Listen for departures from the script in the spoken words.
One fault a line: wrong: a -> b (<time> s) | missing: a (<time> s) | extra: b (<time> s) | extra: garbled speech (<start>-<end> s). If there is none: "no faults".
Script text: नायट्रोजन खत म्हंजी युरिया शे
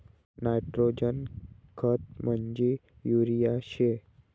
no faults